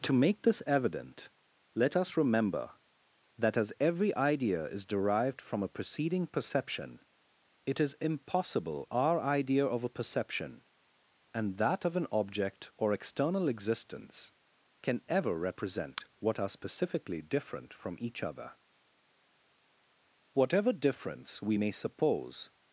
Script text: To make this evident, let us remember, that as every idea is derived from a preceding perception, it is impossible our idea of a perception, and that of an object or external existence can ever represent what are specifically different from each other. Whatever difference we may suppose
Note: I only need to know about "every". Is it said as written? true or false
true